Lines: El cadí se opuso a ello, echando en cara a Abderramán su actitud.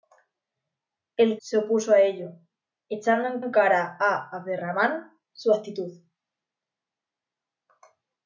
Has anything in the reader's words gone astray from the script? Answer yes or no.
yes